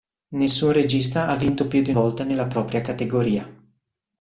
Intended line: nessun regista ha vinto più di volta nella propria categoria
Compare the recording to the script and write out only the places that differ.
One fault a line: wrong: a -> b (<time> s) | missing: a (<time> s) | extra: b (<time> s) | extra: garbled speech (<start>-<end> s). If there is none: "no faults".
no faults